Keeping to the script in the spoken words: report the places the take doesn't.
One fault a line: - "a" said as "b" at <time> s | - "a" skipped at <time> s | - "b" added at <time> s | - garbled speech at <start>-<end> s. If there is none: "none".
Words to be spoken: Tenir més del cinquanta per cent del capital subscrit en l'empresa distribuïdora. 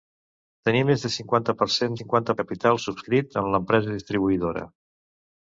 - "del" said as "cinquanta" at 2.0 s